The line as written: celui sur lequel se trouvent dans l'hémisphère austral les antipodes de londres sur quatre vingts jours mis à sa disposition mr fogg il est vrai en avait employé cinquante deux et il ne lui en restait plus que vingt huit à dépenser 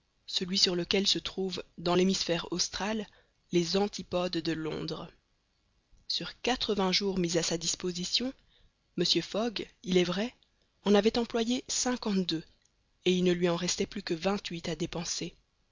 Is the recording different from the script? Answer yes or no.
no